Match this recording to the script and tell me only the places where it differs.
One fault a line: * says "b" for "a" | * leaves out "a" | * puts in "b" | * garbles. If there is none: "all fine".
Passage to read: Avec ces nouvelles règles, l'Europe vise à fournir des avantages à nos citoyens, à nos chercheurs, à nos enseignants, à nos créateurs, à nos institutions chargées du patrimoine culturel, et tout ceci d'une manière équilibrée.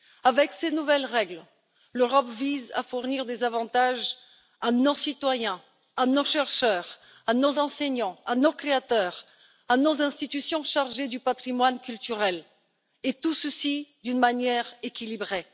all fine